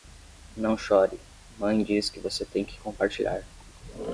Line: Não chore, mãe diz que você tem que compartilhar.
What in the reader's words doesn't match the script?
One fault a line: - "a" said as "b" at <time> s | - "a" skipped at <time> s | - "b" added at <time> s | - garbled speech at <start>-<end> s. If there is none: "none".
none